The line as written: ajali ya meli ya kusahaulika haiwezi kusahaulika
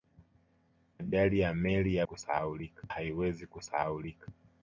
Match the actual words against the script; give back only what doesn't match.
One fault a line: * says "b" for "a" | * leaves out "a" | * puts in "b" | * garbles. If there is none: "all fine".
all fine